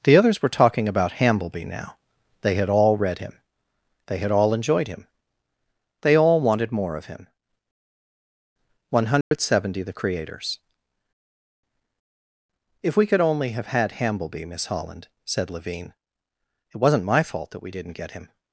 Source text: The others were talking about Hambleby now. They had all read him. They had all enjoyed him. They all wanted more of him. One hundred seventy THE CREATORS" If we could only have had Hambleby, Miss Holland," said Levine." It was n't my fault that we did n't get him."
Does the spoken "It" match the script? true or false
true